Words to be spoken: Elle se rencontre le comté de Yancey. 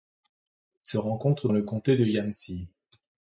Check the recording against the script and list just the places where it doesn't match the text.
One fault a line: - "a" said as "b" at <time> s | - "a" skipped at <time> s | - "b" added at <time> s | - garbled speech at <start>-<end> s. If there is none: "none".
none